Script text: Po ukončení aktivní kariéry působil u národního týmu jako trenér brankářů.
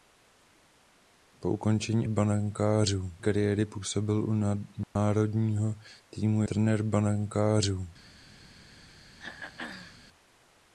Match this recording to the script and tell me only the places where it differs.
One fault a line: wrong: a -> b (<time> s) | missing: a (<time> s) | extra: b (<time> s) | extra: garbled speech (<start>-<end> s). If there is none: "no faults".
wrong: aktivní -> brankářů (2.1 s)
missing: jako (6.4 s)